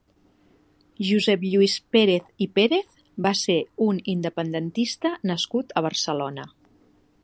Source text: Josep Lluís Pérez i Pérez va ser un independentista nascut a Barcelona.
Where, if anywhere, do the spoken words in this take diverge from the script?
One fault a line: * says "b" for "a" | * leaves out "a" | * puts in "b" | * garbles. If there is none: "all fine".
all fine